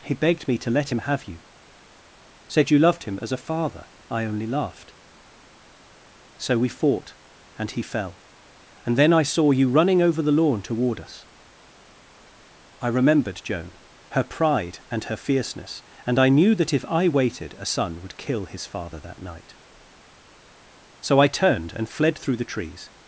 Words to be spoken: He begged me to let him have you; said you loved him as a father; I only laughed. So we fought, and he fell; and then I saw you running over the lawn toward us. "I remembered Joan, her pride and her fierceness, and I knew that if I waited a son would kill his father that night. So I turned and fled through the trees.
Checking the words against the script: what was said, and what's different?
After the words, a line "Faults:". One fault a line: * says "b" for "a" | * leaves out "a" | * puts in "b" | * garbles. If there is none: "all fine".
He begged me to let him have you; said you loved him as a father; I only laughed. So we fought, and he fell; and then I saw you running over the lawn toward us. "I remembered Joan, her pride and her fierceness, and I knew that if I waited a son would kill his father that night. So I turned and fled through the trees.
Faults:
all fine